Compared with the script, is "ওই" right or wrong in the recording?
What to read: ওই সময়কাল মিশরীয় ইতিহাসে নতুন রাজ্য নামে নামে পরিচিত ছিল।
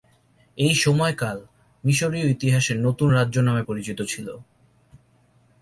wrong